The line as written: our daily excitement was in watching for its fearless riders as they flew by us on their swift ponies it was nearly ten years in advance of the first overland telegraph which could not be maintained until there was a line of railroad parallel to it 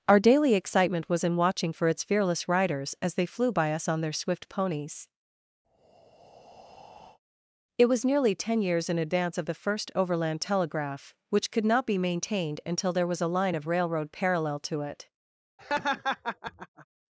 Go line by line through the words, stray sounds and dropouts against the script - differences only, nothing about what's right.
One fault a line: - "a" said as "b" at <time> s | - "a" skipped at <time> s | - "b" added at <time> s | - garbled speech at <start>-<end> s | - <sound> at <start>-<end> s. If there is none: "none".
- breath at 5.6-7.2 s
- laugh at 15.6-16.9 s